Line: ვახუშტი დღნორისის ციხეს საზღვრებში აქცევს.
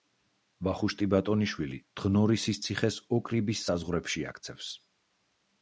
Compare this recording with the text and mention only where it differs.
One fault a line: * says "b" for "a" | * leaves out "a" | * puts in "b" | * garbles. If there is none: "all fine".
* puts in "ბატონიშვილი"
* puts in "ოკრიბის"